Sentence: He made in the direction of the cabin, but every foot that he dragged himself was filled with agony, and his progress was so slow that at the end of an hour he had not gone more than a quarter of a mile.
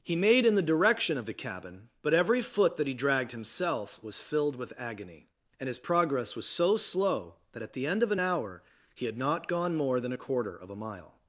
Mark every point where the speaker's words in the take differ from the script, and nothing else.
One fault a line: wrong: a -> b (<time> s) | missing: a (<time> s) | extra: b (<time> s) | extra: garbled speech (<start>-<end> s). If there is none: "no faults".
no faults